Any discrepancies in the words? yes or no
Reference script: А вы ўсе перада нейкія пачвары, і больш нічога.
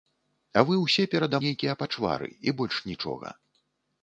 no